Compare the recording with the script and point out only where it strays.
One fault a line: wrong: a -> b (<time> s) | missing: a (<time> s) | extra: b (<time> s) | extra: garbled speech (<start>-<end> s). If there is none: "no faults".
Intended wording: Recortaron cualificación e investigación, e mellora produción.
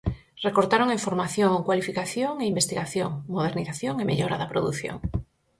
extra: en formación (0.9 s)
extra: modernización (3.3 s)
extra: da (4.4 s)